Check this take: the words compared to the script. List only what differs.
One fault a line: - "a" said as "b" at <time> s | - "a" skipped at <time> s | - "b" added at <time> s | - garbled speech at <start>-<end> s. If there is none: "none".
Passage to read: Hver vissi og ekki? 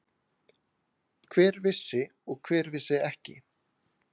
- "hver vissi" added at 2.5 s